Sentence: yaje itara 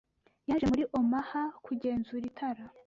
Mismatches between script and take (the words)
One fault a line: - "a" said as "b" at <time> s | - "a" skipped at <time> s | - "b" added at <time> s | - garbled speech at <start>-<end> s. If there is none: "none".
- "muri Omaha kugenzura" added at 0.7 s